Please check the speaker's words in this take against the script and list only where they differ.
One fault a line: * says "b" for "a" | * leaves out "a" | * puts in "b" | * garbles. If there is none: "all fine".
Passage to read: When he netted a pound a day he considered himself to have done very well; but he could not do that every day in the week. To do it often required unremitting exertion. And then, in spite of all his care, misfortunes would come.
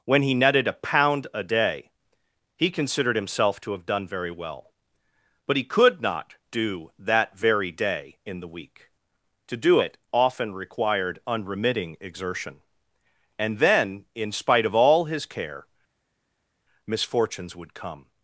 * says "very" for "every"